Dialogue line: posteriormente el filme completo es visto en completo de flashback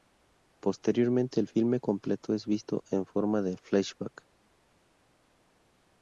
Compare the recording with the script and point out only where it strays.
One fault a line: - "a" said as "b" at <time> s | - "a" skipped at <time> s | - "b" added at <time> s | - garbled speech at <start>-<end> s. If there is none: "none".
- "completo" said as "forma" at 3.1 s